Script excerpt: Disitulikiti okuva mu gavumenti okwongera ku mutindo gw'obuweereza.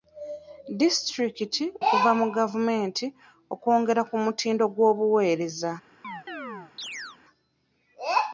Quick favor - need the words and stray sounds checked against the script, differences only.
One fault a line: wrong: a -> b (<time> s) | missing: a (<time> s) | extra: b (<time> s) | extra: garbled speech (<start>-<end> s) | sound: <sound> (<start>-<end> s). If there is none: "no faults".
sound: chirp (6.0-7.2 s)